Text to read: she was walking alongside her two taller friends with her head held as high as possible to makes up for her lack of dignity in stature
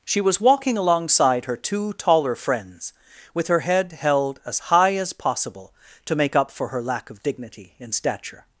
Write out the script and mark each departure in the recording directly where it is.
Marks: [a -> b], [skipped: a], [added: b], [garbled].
she was walking alongside her two taller friends with her head held as high as possible to [makes -> make] up for her lack of dignity in stature